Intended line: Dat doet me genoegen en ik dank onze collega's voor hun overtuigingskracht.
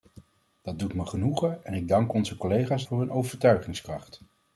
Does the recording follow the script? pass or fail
pass